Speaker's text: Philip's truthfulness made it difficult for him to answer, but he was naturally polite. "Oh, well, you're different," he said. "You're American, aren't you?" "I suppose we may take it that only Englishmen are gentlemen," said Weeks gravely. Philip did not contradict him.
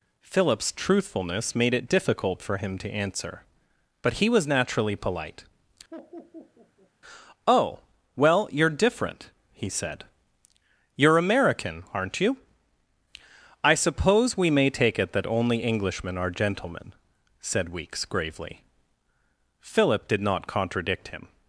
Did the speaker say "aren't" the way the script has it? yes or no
yes